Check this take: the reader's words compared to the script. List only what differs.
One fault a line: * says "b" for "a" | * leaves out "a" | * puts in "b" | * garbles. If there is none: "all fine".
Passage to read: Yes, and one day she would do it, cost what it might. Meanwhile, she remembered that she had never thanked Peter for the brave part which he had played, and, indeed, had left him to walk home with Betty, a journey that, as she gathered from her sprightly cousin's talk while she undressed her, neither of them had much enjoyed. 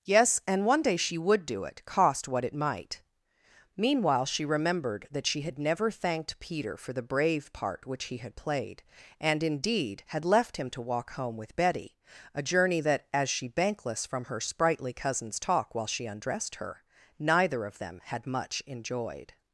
* says "bankless" for "gathered"